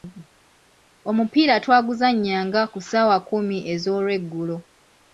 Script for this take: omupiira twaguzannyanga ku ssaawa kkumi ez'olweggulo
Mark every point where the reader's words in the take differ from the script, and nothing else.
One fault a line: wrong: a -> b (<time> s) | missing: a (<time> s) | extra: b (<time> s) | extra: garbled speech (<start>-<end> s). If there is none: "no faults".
no faults